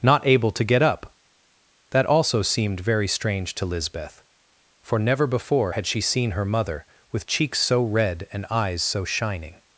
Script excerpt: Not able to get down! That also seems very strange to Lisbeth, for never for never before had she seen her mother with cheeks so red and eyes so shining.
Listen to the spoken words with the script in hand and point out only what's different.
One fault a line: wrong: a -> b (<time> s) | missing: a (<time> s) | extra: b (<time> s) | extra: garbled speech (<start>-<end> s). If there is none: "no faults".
wrong: down -> up (0.8 s)
wrong: seems -> seemed (2.4 s)
missing: for never (5.3 s)